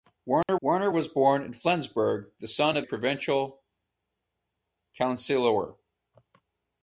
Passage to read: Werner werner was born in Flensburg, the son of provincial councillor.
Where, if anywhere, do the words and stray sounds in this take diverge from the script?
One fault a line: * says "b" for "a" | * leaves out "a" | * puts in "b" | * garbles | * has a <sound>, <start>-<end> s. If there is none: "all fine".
* has a dropout, 0.4-0.5 s